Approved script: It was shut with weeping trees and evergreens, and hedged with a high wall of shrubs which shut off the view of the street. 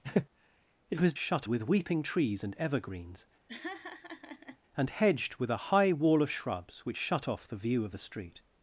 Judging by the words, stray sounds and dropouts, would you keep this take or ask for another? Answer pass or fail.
fail